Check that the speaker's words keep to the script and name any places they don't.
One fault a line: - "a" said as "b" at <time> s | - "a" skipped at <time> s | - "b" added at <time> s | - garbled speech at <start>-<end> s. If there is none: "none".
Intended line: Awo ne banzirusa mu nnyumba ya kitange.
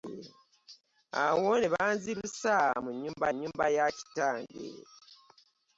- "nnyumba" added at 3.3 s